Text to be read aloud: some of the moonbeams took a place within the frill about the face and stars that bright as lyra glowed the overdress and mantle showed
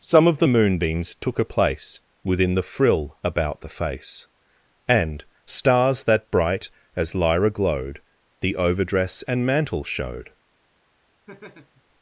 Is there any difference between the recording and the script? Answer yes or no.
no